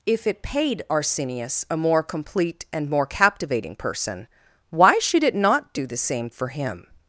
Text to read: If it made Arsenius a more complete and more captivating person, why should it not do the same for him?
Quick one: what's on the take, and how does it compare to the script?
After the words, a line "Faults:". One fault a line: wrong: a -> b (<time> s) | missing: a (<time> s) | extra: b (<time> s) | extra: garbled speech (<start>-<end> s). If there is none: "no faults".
If it paid Arsenius a more complete and more captivating person, why should it not do the same for him?
Faults:
wrong: made -> paid (0.4 s)